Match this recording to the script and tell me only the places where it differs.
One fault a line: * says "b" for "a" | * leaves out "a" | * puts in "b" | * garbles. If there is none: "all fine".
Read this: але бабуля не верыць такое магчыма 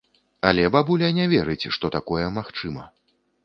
* puts in "што"